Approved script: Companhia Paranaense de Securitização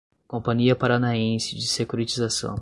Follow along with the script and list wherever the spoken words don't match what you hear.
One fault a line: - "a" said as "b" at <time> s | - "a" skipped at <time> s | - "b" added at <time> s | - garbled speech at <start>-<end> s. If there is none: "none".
none